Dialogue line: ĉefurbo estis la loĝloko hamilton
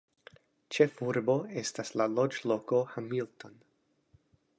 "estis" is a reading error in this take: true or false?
true